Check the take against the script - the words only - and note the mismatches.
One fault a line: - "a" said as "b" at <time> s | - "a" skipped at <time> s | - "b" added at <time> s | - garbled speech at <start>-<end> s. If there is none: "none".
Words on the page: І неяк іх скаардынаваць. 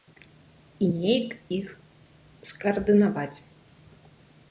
none